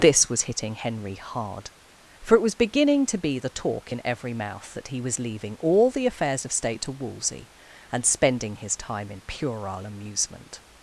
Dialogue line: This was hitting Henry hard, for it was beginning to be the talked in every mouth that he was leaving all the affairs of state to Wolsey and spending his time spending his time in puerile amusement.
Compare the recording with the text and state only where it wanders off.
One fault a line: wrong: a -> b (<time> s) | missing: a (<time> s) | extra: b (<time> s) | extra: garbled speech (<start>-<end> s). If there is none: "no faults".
wrong: talked -> talk (3.5 s)
missing: spending his time (9.1 s)